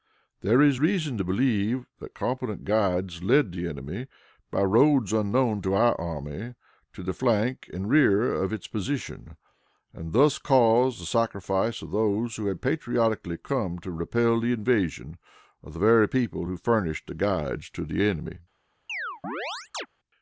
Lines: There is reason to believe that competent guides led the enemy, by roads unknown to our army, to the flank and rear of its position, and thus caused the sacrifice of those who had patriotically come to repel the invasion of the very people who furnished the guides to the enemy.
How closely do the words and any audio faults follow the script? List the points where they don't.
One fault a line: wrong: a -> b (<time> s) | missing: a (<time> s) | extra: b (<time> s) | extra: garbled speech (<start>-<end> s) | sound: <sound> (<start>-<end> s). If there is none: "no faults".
sound: chirp (18.9-19.9 s)